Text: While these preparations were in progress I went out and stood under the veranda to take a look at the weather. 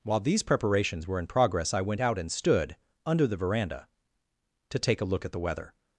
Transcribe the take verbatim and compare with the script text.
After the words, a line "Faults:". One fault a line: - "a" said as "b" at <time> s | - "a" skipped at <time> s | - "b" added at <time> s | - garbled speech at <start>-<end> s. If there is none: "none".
While these preparations were in progress I went out and stood under the veranda to take a look at the weather.
Faults:
none